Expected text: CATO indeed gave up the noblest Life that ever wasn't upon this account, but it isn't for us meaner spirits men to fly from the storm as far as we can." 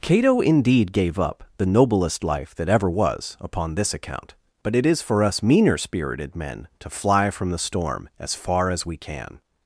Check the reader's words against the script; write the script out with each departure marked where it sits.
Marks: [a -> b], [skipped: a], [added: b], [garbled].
CATO indeed gave up the noblest Life that ever [wasn't -> was] upon this account, but it [isn't -> is] for us meaner [spirits -> spirited] men to fly from the storm as far as we can."